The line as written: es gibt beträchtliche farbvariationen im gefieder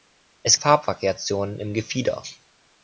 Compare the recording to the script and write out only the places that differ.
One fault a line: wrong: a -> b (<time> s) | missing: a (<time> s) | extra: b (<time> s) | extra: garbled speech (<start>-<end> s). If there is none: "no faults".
missing: gibt beträchtliche (0.6 s)